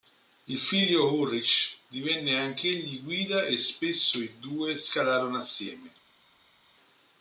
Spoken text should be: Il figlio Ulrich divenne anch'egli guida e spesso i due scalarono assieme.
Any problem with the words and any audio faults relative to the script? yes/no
no